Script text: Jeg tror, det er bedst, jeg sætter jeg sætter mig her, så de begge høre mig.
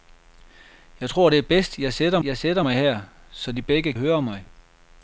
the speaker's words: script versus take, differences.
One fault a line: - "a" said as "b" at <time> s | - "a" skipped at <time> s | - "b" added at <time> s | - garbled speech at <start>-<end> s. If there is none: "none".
none